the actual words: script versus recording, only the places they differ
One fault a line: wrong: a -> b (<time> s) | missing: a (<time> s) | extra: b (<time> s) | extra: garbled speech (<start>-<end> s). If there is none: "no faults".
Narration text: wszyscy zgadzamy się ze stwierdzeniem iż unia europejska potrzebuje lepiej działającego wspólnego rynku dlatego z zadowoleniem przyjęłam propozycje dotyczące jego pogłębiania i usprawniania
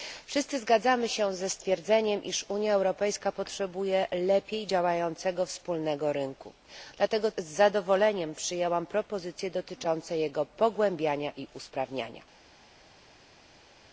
no faults